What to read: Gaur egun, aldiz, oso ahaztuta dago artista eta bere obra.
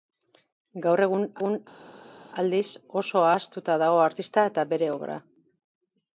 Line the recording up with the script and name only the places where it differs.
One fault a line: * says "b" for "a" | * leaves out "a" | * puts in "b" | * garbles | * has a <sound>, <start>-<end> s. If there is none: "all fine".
* puts in "egun"